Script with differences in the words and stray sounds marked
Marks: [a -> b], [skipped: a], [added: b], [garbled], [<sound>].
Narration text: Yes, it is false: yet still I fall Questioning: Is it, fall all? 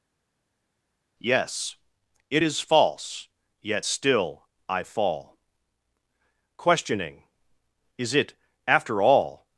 Yes, it is false: yet still I fall Questioning: Is it, [fall -> after] all?